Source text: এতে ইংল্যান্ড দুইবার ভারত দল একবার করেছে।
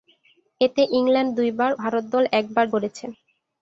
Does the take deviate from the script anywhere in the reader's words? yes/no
no